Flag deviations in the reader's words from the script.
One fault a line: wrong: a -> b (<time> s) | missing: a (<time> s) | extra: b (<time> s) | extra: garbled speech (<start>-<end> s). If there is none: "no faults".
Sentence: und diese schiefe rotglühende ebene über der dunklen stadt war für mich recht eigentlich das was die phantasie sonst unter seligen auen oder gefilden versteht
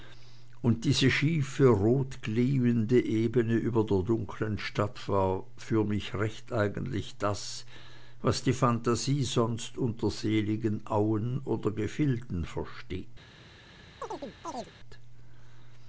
no faults